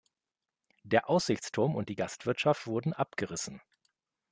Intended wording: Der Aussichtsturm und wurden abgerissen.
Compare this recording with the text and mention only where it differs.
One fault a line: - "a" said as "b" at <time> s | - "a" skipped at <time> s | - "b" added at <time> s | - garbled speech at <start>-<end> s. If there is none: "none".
- "die Gastwirtschaft" added at 1.9 s